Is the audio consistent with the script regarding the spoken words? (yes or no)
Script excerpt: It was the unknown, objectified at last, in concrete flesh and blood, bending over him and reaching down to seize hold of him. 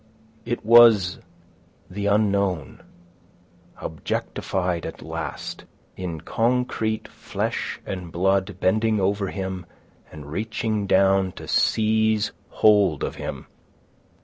yes